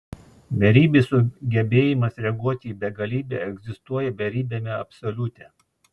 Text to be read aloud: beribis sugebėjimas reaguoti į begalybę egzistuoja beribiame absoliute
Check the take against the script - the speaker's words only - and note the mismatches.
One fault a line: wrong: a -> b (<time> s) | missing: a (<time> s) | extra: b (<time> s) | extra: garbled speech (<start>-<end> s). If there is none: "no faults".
no faults